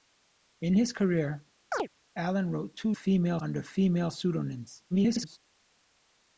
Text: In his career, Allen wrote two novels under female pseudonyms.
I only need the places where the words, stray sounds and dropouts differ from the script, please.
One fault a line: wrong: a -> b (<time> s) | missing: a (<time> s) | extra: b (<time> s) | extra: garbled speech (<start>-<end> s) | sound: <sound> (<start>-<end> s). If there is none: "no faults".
sound: chirp (1.7-1.9 s)
wrong: novels -> female (2.9 s)
extra: garbled speech (4.9-5.4 s)